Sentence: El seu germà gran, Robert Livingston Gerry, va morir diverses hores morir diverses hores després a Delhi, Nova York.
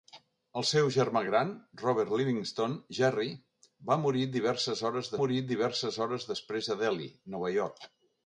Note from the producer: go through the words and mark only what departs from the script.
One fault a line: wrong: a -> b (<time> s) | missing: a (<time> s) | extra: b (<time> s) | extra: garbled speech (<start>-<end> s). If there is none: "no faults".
no faults